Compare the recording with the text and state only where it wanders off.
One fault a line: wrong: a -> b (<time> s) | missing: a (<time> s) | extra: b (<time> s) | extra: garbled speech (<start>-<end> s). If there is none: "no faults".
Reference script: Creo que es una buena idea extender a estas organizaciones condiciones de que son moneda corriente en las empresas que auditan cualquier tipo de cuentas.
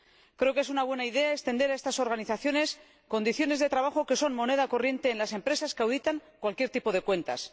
extra: trabajo (3.7 s)